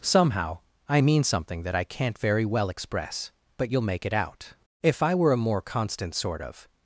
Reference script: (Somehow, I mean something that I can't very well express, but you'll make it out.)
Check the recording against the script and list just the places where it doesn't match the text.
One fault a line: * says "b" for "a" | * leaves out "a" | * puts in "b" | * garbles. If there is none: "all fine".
* puts in "If I were a more constant sort of"